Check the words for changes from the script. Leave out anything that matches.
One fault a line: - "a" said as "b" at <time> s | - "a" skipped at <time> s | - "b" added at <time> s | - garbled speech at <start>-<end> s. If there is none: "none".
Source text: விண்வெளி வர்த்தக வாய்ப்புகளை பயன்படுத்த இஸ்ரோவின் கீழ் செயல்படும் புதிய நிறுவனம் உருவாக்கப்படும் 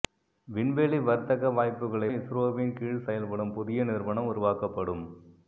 - "பயன்படுத்த" skipped at 2.1 s